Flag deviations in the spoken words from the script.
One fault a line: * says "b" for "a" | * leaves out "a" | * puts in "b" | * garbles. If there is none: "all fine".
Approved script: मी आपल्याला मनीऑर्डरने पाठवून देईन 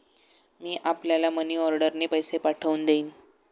* puts in "पैसे"